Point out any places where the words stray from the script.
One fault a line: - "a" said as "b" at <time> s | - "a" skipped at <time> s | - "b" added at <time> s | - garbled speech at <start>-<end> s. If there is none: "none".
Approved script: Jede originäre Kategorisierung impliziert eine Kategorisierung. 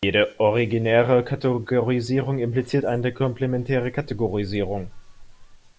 - "komplementäre" added at 3.1 s